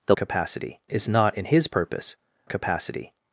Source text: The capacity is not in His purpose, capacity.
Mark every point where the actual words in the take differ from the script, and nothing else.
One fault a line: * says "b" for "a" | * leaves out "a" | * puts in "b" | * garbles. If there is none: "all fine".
all fine